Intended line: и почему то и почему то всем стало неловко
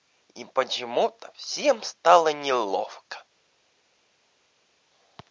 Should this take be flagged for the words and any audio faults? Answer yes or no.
yes